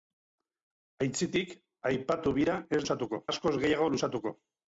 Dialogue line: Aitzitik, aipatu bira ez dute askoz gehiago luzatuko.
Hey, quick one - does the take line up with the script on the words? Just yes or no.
no